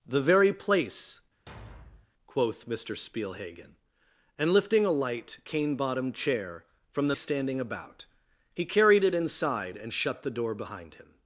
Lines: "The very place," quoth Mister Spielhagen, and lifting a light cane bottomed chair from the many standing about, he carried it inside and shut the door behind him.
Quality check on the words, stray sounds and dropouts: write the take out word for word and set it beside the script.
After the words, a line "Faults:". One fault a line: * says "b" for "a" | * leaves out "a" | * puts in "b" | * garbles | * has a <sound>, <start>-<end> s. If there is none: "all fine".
"The very place," quoth Mister Spielhagen, and lifting a light cane bottomed chair from the standing about, he carried it inside and shut the door behind him.
Faults:
* has a thud, 1.5-2.1 s
* leaves out "many"